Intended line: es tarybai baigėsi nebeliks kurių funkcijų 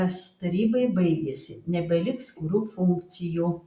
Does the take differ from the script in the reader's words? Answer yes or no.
no